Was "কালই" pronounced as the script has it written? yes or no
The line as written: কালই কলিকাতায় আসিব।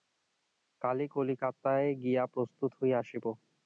yes